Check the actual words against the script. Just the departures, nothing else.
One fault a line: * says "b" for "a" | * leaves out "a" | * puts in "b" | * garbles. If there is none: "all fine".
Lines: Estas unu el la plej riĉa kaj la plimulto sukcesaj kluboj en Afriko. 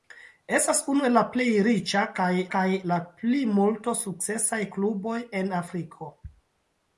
* puts in "kaj"